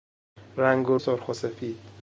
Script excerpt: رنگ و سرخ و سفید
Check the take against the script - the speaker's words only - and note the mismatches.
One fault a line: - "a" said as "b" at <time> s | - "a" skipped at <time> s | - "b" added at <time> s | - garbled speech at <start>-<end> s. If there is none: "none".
none